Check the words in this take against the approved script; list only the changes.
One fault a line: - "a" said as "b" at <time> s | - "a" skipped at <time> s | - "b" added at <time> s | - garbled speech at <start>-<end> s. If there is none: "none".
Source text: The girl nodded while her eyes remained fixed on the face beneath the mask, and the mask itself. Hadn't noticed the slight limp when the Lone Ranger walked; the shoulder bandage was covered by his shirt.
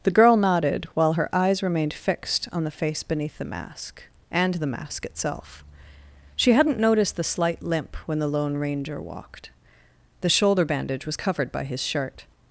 - "She" added at 6.3 s